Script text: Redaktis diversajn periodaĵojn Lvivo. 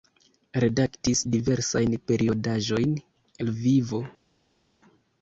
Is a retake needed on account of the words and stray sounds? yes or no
no